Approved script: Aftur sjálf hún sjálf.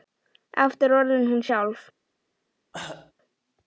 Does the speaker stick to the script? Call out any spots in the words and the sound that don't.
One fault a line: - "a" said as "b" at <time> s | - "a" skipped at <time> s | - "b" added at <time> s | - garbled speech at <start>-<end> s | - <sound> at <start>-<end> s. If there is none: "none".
- "sjálf" said as "orðin" at 1.0 s
- cough at 2.7-3.1 s